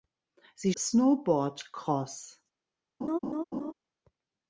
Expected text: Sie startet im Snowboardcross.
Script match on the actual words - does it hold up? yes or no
no